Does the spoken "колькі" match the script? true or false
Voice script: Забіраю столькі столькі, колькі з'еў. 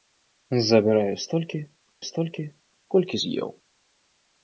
true